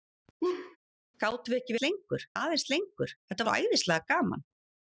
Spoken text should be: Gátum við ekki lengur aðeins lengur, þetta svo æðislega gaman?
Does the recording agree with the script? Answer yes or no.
yes